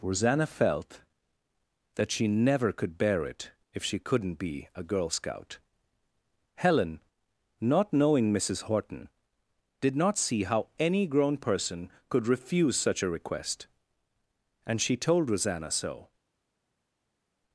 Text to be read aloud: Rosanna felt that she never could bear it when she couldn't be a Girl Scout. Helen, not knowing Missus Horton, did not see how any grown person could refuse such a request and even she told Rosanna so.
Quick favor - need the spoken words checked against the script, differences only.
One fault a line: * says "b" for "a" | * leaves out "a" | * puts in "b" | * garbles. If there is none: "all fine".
* says "if" for "when"
* leaves out "even"